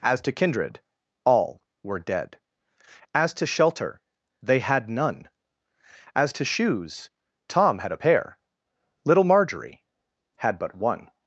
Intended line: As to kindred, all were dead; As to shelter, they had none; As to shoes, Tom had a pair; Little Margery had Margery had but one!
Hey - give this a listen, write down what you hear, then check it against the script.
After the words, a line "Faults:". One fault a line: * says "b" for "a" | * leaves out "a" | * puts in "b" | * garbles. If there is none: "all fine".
As to kindred, all were dead; As to shelter, they had none; As to shoes, Tom had a pair; Little Margery had but one!
Faults:
* leaves out "Margery had"